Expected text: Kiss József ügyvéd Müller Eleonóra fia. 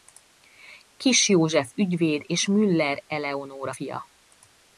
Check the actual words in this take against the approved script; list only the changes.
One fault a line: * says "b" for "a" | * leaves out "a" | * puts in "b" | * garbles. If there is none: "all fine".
* puts in "és"